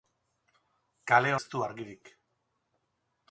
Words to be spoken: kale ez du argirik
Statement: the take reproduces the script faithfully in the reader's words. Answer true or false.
true